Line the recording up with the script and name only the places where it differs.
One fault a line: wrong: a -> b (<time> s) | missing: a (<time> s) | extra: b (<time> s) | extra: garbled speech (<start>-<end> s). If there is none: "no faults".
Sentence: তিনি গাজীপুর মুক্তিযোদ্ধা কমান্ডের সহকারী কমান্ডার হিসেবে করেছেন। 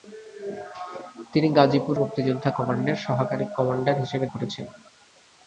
no faults